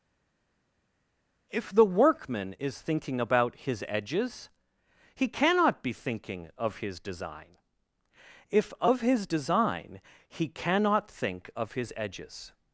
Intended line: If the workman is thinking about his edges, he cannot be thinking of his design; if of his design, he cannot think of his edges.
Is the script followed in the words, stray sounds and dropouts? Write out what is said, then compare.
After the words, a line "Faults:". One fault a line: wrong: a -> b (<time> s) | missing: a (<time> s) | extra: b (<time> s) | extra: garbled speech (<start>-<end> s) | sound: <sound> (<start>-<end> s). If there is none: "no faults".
If the workman is thinking about his edges, he cannot be thinking of his design; if of his design, he cannot think of his edges.
Faults:
no faults